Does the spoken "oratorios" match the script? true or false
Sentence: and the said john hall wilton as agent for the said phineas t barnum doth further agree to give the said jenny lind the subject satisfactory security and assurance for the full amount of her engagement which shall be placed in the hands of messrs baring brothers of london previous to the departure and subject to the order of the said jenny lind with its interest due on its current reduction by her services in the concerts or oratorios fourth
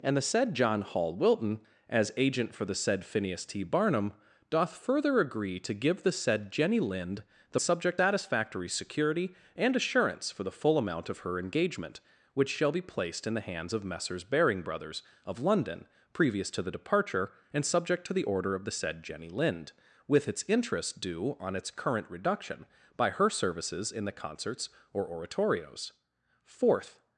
true